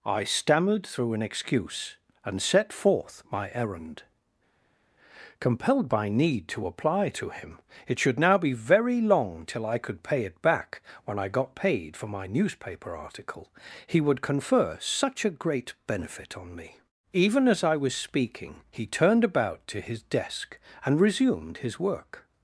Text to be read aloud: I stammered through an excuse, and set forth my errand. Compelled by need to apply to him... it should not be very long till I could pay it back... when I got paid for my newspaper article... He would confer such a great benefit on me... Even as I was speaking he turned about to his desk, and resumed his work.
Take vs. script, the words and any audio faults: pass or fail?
fail